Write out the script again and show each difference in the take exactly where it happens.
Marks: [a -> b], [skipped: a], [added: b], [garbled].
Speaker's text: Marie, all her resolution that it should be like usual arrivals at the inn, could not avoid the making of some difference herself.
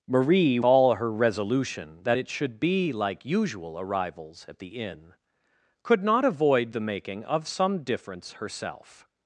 Marie, all her resolution that it should be like usual arrivals at the inn, could not avoid the making of some difference herself.